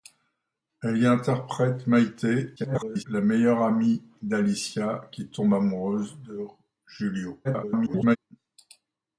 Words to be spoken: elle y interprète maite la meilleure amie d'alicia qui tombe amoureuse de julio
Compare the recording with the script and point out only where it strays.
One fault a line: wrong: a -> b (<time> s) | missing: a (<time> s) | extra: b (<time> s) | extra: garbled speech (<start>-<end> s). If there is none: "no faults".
extra: garbled speech (2.6-3.0 s)
extra: garbled speech (7.4-8.2 s)